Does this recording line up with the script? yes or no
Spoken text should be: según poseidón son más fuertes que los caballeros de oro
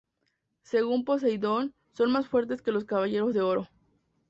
yes